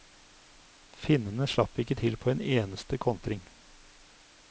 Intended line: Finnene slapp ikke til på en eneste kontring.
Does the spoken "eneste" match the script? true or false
true